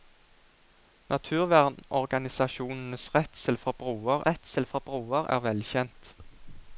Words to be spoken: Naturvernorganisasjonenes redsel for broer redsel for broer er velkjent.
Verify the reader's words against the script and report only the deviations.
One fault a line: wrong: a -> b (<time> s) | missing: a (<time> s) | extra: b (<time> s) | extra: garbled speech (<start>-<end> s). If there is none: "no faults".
no faults